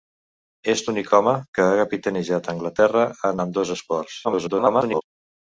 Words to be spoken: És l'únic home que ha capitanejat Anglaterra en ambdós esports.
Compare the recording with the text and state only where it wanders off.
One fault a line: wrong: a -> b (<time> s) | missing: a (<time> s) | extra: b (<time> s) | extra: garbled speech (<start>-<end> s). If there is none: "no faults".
extra: garbled speech (4.2-5.0 s)